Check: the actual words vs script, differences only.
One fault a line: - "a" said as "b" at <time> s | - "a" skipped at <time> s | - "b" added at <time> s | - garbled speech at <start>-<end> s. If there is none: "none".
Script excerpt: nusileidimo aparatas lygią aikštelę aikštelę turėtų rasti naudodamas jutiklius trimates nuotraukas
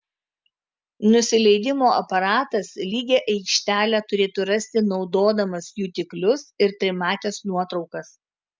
- "aikštelę" skipped at 4.0 s
- "ir" added at 6.7 s